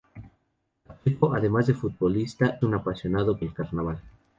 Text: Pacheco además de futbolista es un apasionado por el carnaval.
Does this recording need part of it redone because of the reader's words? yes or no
yes